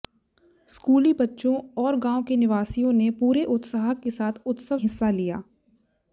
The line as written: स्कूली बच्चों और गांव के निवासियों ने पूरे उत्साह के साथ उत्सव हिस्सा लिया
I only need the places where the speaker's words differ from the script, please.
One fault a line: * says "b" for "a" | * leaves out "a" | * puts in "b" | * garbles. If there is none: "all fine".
all fine